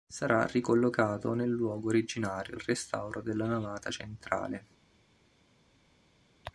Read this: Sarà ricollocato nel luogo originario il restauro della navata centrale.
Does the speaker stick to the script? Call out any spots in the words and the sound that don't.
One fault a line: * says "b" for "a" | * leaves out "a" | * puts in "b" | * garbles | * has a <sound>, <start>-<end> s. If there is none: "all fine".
all fine